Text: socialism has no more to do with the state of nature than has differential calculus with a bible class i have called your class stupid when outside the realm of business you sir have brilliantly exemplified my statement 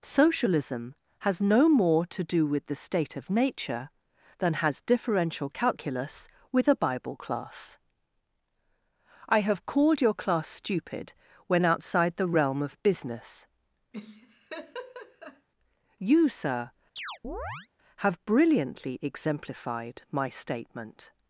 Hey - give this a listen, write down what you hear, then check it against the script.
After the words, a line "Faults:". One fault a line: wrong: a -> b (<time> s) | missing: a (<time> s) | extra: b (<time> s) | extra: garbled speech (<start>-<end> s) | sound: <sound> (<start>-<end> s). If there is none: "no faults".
socialism has no more to do with the state of nature than has differential calculus with a bible class i have called your class stupid when outside the realm of business you sir have brilliantly exemplified my statement
Faults:
sound: laugh (13.9-15.5 s)
sound: chirp (17.0-17.7 s)